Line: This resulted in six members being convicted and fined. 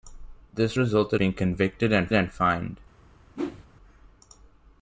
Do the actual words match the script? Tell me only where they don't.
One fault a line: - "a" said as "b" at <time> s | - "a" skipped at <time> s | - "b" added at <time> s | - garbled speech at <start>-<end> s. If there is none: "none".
- "in six members" skipped at 1.2 s
- "and" added at 2.1 s